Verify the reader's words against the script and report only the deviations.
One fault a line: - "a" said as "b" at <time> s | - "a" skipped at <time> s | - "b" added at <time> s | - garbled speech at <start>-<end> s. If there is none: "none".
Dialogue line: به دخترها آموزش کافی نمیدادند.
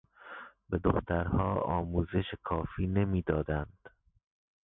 none